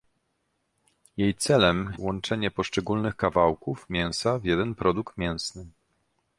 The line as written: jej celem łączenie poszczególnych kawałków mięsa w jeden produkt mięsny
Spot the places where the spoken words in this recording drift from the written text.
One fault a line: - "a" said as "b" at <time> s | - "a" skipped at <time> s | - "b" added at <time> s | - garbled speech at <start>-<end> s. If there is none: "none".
none